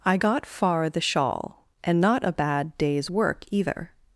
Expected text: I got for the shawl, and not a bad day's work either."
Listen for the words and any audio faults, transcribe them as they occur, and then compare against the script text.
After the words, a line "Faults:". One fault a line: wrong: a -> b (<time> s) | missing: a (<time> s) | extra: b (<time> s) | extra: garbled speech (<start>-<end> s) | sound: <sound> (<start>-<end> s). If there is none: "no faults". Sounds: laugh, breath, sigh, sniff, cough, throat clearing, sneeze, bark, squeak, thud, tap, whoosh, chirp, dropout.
I got far the shawl, and not a bad day's work either."
Faults:
wrong: for -> far (0.4 s)